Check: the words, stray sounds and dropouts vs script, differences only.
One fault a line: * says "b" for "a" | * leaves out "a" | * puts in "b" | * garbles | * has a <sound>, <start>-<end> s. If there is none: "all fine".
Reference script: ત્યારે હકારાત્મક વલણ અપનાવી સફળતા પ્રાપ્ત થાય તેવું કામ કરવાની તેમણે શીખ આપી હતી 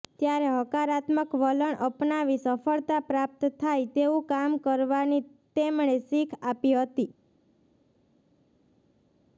all fine